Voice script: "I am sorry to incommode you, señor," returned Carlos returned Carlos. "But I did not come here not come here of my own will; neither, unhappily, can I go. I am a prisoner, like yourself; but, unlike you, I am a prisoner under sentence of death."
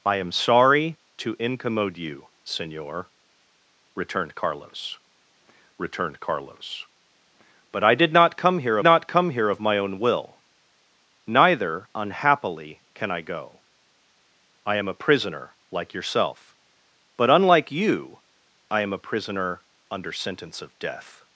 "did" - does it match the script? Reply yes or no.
yes